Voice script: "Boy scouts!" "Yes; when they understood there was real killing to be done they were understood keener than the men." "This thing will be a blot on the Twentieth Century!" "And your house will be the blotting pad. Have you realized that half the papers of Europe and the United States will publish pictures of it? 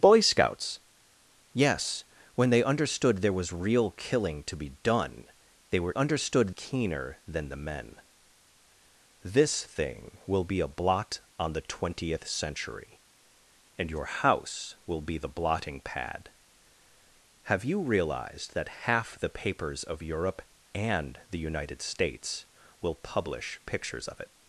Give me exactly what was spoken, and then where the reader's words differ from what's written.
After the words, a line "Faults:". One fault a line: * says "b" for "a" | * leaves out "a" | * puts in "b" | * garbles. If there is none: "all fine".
"Boy scouts!" "Yes; when they understood there was real killing to be done they were understood keener than the men." "This thing will be a blot on the Twentieth Century!" "And your house will be the blotting pad. Have you realized that half the papers of Europe and the United States will publish pictures of it?
Faults:
all fine